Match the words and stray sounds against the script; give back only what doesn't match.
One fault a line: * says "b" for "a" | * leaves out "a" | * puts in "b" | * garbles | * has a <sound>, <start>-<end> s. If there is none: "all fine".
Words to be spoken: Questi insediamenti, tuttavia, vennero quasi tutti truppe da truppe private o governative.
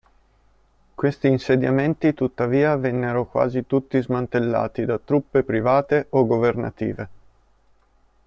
* says "smantellati" for "truppe"